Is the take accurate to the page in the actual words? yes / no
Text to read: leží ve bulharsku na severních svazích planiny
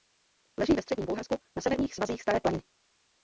no